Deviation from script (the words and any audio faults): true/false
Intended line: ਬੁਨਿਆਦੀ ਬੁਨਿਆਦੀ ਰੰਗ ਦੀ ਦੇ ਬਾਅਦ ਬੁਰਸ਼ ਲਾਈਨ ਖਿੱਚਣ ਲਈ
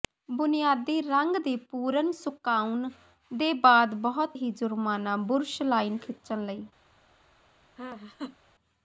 true